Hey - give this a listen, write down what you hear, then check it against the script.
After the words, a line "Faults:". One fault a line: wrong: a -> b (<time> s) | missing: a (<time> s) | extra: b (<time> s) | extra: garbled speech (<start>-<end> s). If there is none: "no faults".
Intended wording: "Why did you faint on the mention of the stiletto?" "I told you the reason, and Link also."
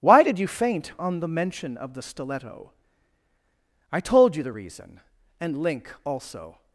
"Why did you faint on the mention of the stiletto?" "I told you the reason, and Link also."
Faults:
no faults